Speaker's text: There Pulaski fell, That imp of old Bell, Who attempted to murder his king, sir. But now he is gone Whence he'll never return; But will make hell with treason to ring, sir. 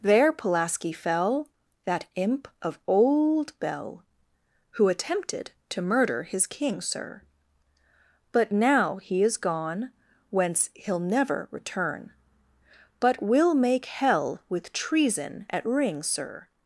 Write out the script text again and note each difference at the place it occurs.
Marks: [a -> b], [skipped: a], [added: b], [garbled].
There Pulaski fell, That imp of old Bell, Who attempted to murder his king, sir. But now he is gone Whence he'll never return; But will make hell with treason [to -> at] ring, sir.